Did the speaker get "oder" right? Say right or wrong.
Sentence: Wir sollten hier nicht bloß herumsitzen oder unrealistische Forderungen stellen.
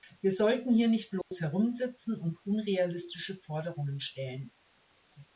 wrong